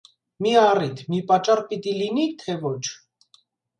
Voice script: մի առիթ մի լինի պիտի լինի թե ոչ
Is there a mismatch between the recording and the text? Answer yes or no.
yes